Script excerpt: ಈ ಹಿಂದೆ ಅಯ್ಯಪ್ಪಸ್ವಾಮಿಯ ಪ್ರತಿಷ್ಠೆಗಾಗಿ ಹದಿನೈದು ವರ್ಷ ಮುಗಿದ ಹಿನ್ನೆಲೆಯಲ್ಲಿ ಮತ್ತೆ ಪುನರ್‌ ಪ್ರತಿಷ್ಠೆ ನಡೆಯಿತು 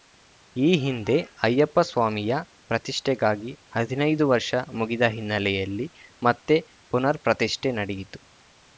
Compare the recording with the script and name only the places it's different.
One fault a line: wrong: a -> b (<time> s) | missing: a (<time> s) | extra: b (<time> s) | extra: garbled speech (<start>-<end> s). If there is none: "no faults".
no faults